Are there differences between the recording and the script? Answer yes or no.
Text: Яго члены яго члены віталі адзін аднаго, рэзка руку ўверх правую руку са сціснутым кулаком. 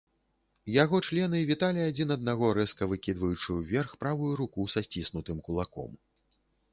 yes